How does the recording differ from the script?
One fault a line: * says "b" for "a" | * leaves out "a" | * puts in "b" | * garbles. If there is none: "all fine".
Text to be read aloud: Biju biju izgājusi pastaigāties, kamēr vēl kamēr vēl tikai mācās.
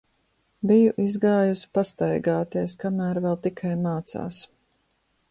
* leaves out "biju"
* leaves out "kamēr vēl"